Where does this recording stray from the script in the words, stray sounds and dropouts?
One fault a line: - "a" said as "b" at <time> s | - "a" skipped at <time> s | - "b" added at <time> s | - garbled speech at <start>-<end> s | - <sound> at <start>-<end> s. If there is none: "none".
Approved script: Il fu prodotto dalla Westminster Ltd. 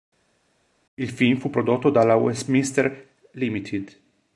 - "film" added at 1.1 s